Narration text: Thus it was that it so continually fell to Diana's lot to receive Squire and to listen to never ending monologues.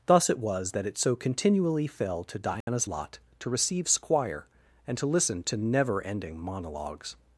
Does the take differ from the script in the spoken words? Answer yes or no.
no